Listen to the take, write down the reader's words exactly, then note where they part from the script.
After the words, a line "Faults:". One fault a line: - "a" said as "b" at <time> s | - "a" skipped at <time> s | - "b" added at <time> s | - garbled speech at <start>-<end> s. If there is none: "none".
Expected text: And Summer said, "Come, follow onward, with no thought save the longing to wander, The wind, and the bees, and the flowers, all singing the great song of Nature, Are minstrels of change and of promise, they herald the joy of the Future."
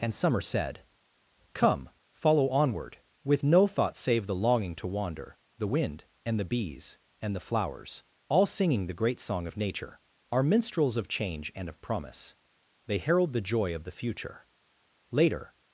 And Summer said, "Come, follow onward, with no thought save the longing to wander, The wind, and the bees, and the flowers, all singing the great song of Nature, Are minstrels of change and of promise, they herald the joy of the Future." Later
Faults:
- "Later" added at 15.1 s